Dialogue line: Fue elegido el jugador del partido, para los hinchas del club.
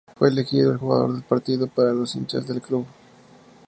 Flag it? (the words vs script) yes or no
no